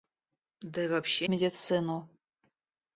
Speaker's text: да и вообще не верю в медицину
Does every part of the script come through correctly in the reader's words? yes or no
no